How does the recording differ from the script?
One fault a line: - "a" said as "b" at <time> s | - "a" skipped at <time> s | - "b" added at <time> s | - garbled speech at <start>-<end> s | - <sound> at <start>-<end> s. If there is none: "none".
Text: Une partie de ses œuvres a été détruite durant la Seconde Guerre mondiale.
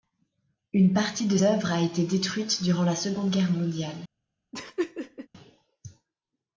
- "ses" skipped at 1.4 s
- laugh at 4.5-5.3 s